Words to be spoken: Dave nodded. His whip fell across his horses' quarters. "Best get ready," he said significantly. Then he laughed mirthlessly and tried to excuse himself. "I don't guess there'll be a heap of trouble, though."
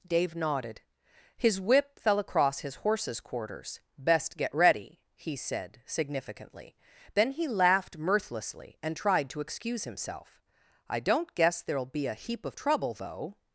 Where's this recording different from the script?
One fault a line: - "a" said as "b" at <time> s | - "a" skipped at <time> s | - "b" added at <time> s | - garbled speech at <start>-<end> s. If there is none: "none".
none